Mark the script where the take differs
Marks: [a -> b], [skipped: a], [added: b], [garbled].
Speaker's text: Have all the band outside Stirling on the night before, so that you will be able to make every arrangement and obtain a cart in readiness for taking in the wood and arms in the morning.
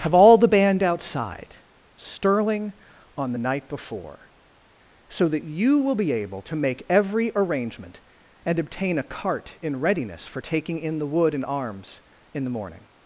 Have all the band outside Stirling on the night before, so that you will be able to make every arrangement and obtain a cart in readiness for taking in the wood and arms in the morning.